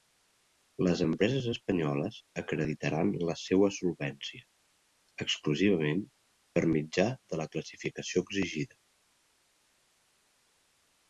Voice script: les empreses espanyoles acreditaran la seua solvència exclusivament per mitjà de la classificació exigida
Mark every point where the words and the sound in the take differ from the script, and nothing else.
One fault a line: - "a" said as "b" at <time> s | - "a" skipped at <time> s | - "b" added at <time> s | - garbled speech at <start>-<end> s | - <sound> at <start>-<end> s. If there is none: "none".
none